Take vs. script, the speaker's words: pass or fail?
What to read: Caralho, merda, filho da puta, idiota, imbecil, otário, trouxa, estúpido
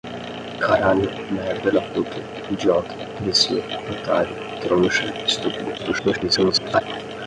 fail